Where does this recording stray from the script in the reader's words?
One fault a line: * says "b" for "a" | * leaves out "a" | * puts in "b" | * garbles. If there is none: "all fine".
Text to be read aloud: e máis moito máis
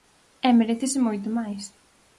* says "merécese" for "máis"